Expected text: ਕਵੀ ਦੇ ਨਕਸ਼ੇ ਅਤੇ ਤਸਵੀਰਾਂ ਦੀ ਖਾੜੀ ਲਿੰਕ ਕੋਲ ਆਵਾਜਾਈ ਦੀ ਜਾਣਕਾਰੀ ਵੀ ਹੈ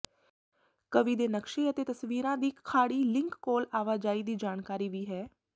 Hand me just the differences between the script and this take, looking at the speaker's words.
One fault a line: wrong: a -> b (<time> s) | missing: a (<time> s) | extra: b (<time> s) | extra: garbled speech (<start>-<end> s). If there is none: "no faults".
no faults